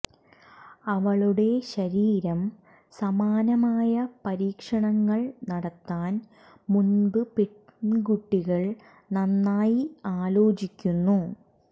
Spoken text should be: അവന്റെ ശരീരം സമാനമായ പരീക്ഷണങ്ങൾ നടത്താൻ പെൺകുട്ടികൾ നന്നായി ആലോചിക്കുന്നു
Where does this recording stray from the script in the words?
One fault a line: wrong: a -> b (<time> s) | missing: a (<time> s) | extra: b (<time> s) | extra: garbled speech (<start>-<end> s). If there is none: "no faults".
wrong: അവന്റെ -> അവളുടെ (0.9 s)
extra: മുമ്പ് (6.7 s)